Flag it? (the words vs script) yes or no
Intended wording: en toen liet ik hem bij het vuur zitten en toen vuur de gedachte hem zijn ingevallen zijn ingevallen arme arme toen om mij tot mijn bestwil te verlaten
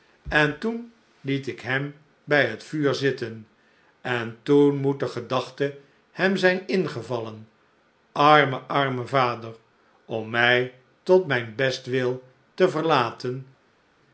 yes